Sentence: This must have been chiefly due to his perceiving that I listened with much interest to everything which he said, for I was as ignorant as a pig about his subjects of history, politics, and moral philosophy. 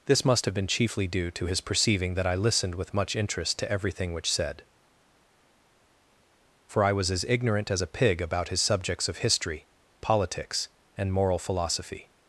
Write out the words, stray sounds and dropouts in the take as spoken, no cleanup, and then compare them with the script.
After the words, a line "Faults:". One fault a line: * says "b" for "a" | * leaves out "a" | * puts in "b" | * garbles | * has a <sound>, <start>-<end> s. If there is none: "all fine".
This must have been chiefly due to his perceiving that I listened with much interest to everything which said, for I was as ignorant as a pig about his subjects of history, politics, and moral philosophy.
Faults:
* leaves out "he"